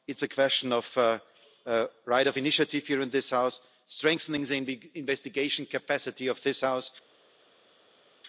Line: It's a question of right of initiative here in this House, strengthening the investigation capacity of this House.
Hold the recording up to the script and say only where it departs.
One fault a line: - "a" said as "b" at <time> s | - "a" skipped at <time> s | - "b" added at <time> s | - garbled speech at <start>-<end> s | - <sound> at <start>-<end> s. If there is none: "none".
none